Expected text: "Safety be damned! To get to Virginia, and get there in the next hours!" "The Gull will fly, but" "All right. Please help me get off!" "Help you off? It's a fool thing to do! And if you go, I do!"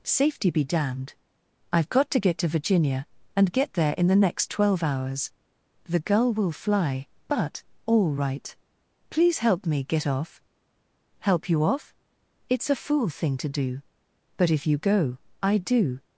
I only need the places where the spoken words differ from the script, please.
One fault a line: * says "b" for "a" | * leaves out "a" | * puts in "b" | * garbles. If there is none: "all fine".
* puts in "I've got"
* puts in "twelve"
* says "But" for "And"